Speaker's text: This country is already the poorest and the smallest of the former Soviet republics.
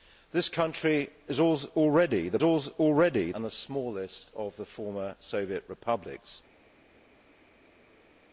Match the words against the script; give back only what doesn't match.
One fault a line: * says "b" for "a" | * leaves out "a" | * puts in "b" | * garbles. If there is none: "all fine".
* says "already" for "poorest"